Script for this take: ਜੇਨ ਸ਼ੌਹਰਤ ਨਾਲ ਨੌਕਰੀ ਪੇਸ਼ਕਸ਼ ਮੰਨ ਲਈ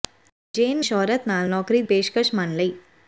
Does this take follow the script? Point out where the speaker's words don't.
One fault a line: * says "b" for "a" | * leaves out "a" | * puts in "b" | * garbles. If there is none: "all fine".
all fine